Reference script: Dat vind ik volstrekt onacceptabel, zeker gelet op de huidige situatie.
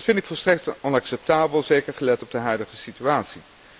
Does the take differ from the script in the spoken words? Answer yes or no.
no